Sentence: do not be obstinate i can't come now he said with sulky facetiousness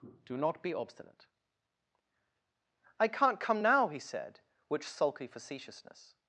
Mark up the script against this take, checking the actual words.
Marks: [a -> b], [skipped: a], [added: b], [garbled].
do not be obstinate i can't come now he said [with -> which] sulky facetiousness